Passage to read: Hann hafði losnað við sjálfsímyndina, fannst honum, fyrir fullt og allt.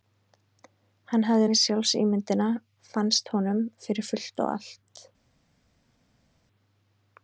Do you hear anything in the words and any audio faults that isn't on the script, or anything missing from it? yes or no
yes